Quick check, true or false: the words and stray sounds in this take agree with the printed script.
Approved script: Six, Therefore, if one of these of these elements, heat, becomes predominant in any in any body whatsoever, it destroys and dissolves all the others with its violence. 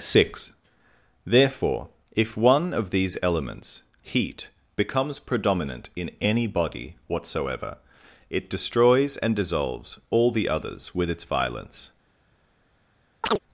false